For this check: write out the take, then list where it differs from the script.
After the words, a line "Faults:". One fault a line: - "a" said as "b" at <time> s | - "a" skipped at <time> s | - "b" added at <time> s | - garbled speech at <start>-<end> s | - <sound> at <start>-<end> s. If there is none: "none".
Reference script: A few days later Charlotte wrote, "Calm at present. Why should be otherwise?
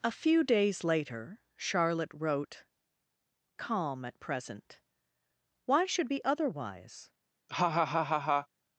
A few days later Charlotte wrote, "Calm at present. Why should be otherwise?
Faults:
- laugh at 7.5-8.5 s